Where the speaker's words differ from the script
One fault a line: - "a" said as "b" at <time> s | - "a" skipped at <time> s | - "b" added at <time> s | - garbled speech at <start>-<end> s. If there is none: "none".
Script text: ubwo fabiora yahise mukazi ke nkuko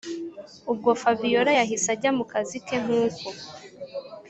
- "ajya" added at 1.9 s